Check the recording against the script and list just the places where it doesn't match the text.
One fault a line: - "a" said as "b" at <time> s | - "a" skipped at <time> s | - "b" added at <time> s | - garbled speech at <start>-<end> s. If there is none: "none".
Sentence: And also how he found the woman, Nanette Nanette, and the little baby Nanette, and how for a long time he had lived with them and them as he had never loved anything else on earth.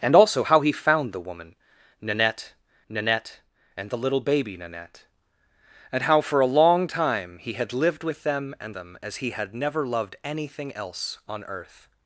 none